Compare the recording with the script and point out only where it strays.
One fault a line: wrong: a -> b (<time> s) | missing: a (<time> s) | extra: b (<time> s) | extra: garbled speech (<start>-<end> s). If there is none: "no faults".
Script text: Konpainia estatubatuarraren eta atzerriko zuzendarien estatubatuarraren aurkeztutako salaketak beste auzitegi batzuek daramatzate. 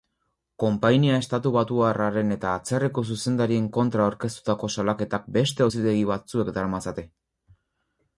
wrong: estatubatuarraren -> kontra (3.8 s)